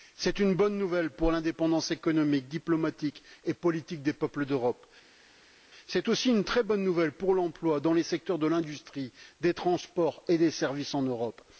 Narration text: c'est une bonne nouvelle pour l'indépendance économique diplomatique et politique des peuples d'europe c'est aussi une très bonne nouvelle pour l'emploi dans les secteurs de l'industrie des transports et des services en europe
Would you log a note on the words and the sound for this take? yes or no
no